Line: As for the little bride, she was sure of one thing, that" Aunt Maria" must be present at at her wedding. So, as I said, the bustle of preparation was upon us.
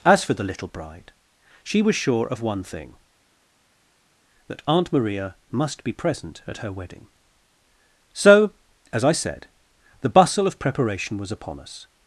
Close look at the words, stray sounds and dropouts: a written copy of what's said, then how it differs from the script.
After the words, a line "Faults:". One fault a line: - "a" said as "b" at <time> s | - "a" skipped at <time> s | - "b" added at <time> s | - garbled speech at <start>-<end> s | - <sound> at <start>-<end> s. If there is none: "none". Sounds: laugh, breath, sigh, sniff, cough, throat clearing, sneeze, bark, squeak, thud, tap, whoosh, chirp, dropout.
As for the little bride, she was sure of one thing, that" Aunt Maria" must be present at her wedding. So, as I said, the bustle of preparation was upon us.
Faults:
- "at" skipped at 6.6 s